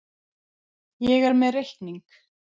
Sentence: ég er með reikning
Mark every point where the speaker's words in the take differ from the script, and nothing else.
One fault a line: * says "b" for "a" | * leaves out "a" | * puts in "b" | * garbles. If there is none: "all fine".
all fine